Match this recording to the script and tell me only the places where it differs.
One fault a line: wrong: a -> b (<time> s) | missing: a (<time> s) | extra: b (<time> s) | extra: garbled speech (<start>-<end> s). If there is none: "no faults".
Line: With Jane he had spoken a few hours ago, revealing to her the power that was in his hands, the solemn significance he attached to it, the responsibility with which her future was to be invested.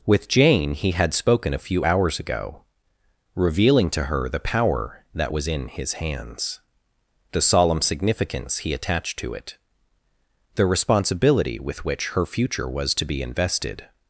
no faults